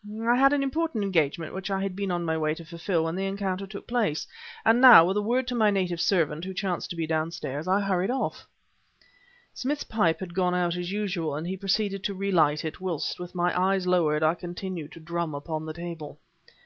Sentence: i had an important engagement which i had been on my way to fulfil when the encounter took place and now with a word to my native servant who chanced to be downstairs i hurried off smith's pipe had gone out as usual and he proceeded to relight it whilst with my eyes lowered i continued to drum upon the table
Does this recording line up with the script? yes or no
yes